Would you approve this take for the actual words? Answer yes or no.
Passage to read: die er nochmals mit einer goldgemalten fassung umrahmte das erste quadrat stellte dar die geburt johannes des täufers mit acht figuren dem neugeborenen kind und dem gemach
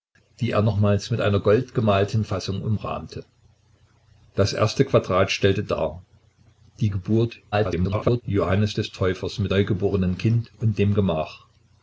no